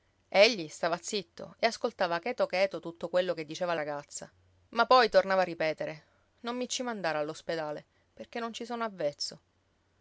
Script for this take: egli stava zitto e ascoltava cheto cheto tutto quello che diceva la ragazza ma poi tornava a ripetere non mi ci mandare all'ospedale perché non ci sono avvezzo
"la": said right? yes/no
no